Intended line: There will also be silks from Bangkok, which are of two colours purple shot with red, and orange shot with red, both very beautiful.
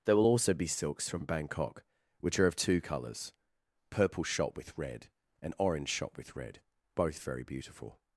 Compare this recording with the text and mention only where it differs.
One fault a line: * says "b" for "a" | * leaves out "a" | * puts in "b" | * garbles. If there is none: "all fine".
all fine